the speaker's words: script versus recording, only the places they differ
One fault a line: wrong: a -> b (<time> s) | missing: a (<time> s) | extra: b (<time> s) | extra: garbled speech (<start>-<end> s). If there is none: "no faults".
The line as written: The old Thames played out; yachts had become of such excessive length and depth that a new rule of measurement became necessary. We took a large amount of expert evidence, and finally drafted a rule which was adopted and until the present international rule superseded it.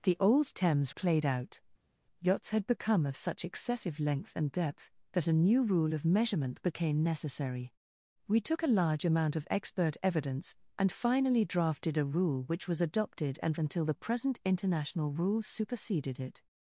no faults